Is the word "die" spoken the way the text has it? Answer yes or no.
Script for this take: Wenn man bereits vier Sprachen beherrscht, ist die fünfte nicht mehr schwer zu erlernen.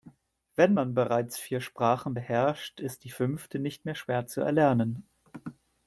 yes